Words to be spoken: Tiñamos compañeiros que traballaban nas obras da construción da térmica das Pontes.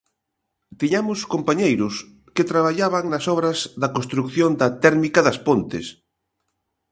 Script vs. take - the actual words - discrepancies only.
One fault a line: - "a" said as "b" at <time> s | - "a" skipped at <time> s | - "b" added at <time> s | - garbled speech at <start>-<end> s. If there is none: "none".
none